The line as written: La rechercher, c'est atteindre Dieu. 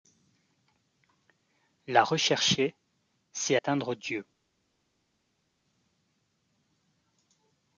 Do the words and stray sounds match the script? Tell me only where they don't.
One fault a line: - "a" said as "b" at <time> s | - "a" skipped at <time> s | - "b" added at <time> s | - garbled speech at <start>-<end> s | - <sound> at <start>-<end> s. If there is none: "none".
none